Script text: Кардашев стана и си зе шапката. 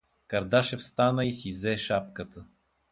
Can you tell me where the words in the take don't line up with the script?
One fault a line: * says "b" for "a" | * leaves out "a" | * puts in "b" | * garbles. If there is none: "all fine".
all fine